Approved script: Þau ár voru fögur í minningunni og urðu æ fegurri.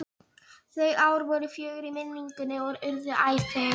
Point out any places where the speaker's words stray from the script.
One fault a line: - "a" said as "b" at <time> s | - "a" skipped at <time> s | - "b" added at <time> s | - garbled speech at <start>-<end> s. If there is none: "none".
none